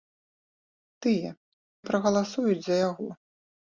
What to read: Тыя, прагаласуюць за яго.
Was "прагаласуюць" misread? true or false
false